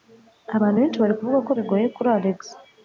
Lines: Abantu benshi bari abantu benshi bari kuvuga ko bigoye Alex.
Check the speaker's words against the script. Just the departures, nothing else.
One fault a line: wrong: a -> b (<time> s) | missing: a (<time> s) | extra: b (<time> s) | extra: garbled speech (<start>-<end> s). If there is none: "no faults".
missing: abantu benshi bari (1.1 s)
extra: kuri (2.0 s)